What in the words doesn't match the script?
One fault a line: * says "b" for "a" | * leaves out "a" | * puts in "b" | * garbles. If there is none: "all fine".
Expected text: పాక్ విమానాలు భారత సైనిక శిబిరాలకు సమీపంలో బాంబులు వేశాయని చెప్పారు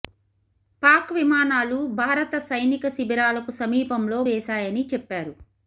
* leaves out "బాంబులు"